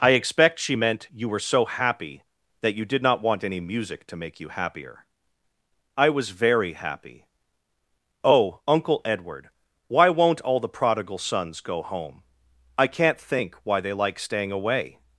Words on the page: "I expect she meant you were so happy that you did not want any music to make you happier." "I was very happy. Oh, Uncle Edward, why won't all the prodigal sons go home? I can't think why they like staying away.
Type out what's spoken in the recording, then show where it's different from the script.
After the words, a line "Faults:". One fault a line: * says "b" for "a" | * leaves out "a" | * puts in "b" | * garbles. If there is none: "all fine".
"I expect she meant you were so happy that you did not want any music to make you happier." "I was very happy. Oh, Uncle Edward, why won't all the prodigal sons go home? I can't think why they like staying away.
Faults:
all fine